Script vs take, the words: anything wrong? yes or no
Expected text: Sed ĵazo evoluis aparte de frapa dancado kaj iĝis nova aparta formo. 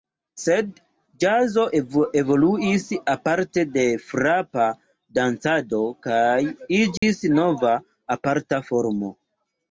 no